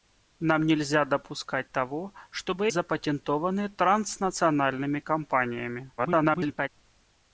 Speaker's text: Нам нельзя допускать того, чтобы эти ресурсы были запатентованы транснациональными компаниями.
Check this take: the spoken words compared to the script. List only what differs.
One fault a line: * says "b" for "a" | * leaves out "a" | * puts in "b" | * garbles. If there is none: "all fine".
* leaves out "эти ресурсы были"
* garbles